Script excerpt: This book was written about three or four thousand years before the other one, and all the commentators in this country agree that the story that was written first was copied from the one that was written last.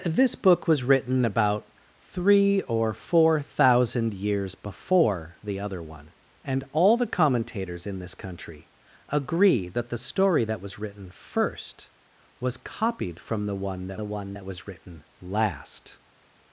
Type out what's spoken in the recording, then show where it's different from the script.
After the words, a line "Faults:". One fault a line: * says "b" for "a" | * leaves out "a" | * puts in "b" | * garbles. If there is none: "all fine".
This book was written about three or four thousand years before the other one, and all the commentators in this country agree that the story that was written first was copied from the one that the one that was written last.
Faults:
* puts in "the one that"